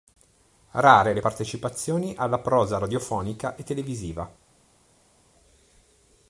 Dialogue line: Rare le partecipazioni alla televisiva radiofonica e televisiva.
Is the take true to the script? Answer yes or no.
no